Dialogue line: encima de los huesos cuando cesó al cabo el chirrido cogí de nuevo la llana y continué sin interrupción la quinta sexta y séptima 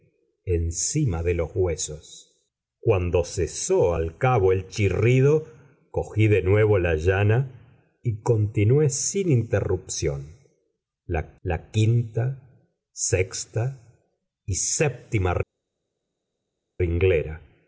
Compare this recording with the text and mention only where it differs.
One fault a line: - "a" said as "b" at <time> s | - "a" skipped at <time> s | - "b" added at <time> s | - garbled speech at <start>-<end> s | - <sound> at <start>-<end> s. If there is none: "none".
- "la" added at 11.4 s